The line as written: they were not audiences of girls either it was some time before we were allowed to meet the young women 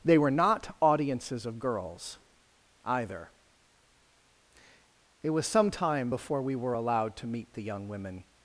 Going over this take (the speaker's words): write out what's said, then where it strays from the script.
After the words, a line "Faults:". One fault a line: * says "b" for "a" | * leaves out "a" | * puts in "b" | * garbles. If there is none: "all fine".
they were not audiences of girls either it was some time before we were allowed to meet the young women
Faults:
all fine